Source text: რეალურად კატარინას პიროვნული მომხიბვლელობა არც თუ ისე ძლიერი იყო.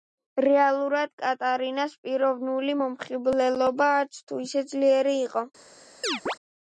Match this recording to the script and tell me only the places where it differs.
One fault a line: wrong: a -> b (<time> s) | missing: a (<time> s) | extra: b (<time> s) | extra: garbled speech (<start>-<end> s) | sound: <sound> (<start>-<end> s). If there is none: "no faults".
sound: chirp (6.0-6.4 s)